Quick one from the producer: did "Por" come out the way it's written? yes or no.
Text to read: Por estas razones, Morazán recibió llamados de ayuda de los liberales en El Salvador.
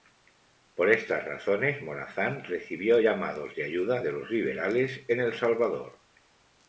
yes